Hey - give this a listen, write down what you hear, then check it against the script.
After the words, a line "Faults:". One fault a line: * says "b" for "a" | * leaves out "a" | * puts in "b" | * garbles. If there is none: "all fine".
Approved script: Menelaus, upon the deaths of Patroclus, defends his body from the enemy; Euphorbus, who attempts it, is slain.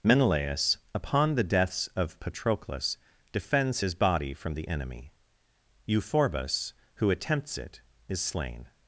Menelaus, upon the deaths of Patroclus, defends his body from the enemy; Euphorbus, who attempts it, is slain.
Faults:
all fine